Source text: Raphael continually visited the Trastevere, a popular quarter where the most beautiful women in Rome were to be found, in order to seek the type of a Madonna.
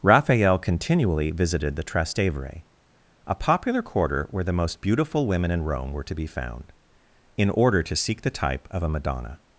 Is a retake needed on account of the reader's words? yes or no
no